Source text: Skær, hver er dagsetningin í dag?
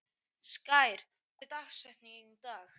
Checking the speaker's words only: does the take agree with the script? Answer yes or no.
no